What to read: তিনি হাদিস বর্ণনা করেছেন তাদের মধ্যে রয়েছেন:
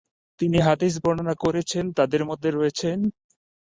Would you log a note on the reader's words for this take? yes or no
no